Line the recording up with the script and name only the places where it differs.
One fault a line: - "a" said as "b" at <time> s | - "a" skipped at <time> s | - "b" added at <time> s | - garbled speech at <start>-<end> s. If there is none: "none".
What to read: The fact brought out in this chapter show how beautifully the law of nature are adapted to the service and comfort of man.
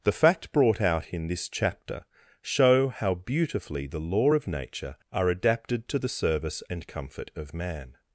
none